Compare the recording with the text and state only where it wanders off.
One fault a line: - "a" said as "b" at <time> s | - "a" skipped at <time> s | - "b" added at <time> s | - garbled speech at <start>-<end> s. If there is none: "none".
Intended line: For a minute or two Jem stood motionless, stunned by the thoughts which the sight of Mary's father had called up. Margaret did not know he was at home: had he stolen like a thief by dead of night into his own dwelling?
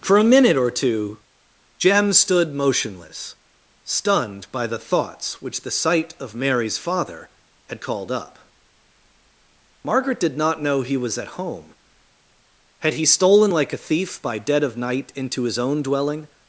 none